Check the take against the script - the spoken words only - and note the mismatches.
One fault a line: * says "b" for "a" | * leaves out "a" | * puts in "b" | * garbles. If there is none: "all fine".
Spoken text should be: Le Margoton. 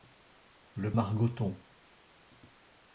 all fine